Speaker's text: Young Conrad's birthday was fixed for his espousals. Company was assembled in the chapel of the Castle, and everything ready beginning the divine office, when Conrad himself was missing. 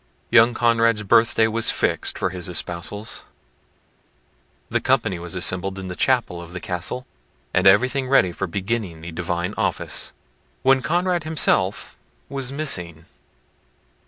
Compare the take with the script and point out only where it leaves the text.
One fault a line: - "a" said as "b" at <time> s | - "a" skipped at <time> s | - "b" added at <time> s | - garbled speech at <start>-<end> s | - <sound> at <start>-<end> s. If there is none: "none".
- "The" added at 4.7 s
- "for" added at 8.3 s